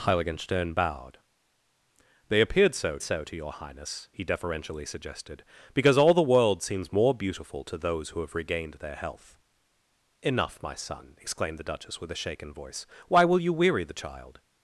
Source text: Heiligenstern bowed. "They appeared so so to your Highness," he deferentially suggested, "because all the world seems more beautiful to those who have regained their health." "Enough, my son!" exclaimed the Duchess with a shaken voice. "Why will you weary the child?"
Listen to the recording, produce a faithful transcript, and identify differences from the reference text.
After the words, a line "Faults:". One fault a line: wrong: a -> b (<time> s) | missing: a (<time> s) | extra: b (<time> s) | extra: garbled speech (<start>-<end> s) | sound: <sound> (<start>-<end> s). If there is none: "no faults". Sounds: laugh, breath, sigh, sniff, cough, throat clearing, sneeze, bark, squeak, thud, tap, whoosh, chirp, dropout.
Heiligenstern bowed. "They appeared so so to your Highness," he deferentially suggested, "because all the world seems more beautiful to those who have regained their health." "Enough, my son!" exclaimed the Duchess with a shaken voice. "Why will you weary the child?"
Faults:
no faults